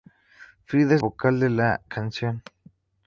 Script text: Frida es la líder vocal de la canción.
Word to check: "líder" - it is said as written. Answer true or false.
false